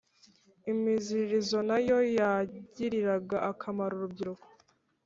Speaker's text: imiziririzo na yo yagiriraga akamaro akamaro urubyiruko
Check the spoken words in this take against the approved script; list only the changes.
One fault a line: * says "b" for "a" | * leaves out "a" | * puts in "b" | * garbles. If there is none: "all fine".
* leaves out "akamaro"